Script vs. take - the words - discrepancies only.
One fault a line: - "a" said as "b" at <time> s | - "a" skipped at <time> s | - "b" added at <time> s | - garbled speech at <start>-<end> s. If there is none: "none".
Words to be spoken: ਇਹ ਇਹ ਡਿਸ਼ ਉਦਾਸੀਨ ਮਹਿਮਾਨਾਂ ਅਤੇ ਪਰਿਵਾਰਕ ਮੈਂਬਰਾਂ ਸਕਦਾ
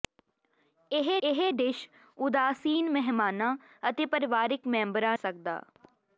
none